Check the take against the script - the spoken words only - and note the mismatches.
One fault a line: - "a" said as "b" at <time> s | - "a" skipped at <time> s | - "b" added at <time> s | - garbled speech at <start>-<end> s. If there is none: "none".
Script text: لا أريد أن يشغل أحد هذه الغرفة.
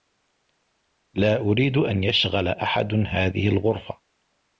none